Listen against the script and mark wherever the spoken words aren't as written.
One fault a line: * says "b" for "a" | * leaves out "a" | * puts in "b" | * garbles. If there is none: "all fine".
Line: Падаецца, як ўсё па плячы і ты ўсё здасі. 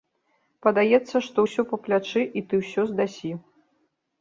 * says "што" for "як"